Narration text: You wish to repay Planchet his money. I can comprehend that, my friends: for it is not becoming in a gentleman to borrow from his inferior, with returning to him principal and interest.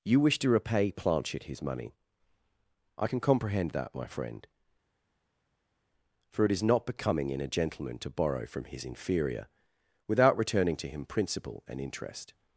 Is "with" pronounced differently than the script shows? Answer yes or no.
yes